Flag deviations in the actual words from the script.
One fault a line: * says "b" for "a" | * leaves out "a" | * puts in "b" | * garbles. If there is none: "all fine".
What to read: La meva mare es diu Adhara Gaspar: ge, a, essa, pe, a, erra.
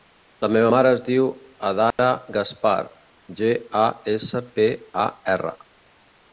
all fine